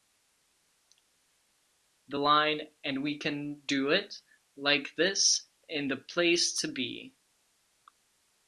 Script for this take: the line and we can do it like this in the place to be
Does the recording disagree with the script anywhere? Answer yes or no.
no